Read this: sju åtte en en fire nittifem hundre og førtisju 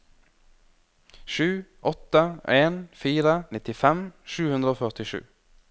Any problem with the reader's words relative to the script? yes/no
yes